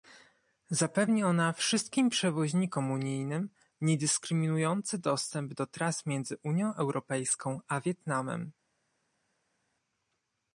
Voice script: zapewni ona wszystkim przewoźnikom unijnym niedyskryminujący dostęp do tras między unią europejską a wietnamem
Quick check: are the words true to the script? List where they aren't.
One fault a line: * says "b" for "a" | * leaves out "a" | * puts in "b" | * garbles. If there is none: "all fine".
all fine